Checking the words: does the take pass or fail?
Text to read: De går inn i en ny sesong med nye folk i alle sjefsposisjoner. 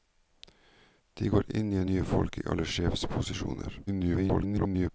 fail